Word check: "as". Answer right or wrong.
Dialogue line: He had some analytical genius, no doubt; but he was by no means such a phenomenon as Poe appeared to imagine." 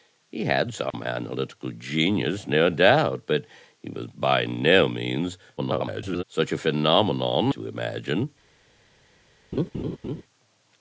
wrong